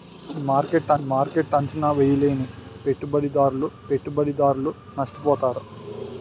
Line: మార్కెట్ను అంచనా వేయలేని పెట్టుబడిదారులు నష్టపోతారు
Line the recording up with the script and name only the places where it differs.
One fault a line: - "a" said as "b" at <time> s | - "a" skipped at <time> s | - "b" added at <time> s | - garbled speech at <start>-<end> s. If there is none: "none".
- "మార్కెట్ను" added at 1.1 s
- "పెట్టుబడిదారులు" added at 3.9 s